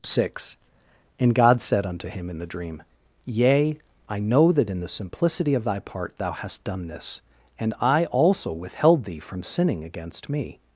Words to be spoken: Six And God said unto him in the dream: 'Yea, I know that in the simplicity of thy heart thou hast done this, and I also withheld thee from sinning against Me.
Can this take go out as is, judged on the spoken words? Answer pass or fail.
fail